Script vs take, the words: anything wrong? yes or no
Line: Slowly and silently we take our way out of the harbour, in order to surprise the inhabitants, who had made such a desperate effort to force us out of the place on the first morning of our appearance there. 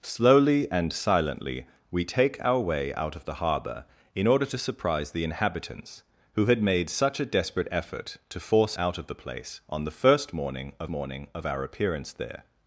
yes